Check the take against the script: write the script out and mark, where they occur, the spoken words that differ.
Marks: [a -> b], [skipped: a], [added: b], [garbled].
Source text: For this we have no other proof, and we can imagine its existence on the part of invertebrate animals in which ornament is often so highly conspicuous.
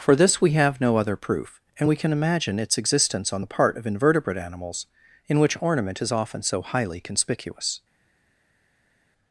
For this we have no other proof, and we can imagine its existence on the part of invertebrate animals in which ornament is often so highly conspicuous.